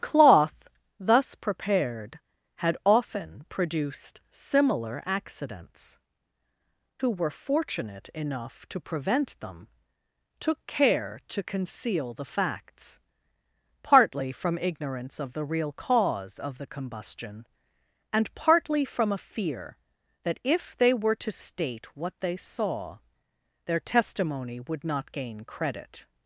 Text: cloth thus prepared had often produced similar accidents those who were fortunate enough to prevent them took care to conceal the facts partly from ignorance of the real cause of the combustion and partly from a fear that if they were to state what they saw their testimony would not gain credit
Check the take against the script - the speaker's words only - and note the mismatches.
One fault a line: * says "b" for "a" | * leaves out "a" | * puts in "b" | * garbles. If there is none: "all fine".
* leaves out "those"